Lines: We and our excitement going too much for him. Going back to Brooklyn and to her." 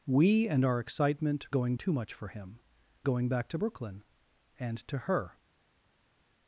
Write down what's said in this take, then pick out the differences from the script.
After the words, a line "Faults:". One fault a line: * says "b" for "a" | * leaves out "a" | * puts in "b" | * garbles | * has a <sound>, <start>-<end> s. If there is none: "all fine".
We and our excitement going too much for him. Going back to Brooklyn and to her."
Faults:
all fine